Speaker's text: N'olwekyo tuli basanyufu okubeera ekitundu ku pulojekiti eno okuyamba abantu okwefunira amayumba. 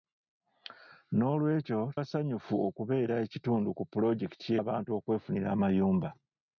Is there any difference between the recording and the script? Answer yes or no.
yes